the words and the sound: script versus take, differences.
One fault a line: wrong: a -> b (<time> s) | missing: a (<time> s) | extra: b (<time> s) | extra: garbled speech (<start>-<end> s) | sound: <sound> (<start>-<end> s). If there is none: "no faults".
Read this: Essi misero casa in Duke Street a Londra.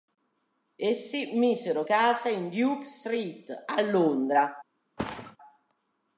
sound: thud (5.0-5.4 s)